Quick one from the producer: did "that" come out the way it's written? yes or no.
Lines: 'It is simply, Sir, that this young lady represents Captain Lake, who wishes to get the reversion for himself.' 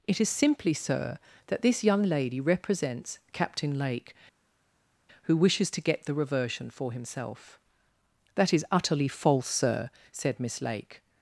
yes